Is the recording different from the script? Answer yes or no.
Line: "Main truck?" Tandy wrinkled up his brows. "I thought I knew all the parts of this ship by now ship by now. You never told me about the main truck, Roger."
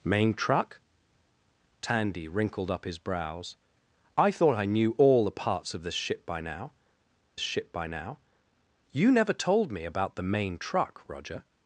no